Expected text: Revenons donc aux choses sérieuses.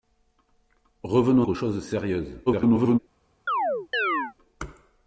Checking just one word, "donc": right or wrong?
wrong